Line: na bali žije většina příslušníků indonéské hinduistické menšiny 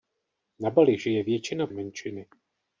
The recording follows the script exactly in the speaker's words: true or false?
false